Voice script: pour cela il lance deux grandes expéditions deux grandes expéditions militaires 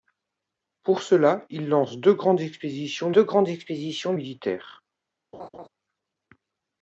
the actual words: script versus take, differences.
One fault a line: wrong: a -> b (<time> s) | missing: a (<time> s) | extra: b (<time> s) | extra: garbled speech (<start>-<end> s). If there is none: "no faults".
no faults